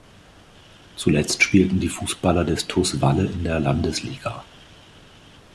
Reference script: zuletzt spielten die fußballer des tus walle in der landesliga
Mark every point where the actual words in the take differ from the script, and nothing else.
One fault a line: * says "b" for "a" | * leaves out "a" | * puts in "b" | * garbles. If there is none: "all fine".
all fine